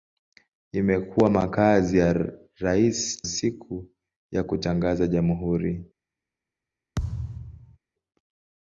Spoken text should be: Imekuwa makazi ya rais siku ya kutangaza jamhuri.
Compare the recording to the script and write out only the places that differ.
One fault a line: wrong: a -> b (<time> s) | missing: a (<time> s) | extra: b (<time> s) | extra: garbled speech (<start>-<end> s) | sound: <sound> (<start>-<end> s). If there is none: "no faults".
sound: thud (7.0-7.8 s)